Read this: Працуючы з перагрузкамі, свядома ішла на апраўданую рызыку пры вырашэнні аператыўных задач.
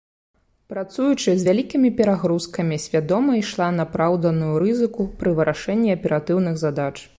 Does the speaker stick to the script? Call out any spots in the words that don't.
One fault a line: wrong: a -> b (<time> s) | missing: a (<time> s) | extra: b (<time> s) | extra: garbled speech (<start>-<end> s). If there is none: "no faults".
extra: вялікімі (1.5 s)